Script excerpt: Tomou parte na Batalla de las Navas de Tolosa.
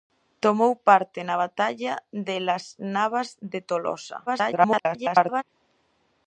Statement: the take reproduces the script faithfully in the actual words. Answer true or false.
false